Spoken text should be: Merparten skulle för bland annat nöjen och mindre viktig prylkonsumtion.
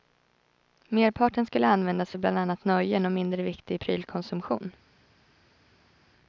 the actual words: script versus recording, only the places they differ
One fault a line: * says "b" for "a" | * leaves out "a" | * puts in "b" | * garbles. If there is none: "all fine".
* puts in "användas"